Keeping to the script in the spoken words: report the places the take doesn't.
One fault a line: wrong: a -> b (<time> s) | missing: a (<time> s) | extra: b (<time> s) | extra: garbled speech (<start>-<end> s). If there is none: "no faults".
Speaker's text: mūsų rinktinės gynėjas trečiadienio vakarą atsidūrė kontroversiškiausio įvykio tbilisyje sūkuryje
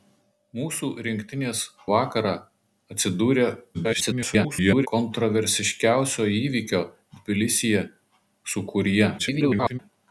missing: gynėjas trečiadienio (1.6 s)
extra: garbled speech (3.7-4.9 s)
extra: garbled speech (9.2-9.8 s)